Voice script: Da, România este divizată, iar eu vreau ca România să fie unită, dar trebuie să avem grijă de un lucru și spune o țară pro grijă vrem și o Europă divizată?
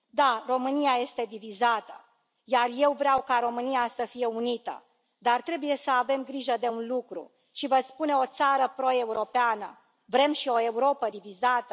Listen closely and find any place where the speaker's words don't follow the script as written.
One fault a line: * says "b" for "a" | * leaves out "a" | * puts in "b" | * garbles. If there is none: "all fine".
* puts in "vă"
* says "europeană" for "grijă"